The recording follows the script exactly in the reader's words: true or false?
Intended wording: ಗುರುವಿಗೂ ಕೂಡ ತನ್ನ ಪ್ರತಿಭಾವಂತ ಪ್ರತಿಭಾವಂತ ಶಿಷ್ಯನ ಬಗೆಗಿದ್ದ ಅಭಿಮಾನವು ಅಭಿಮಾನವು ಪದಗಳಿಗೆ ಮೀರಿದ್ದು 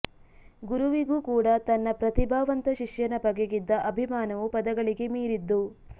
false